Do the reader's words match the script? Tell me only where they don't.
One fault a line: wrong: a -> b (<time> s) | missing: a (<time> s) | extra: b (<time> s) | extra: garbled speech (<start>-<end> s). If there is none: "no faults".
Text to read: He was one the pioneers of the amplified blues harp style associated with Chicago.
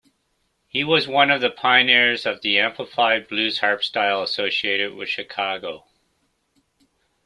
extra: of (1.3 s)